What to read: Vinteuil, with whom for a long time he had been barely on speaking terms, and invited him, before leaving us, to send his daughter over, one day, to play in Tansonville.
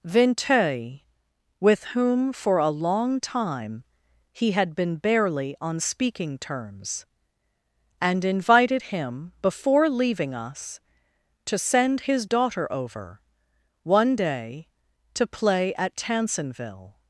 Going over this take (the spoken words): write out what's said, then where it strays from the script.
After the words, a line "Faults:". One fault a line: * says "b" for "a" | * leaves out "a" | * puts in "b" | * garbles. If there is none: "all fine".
Vinteuil, with whom for a long time he had been barely on speaking terms, and invited him, before leaving us, to send his daughter over, one day, to play at Tansonville.
Faults:
* says "at" for "in"